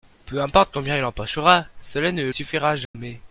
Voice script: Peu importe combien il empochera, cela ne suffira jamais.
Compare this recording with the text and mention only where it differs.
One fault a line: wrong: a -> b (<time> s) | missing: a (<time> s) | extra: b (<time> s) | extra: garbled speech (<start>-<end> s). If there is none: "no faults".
no faults